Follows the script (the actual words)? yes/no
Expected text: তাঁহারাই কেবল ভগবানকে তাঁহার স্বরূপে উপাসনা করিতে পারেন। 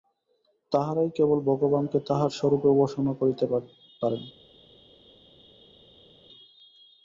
yes